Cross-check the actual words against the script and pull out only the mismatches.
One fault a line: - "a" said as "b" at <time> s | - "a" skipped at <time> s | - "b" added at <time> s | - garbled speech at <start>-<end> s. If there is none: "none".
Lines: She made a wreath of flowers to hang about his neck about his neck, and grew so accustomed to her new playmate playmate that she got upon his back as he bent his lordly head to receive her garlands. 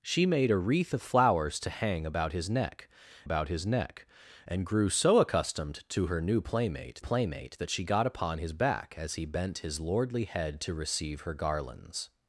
none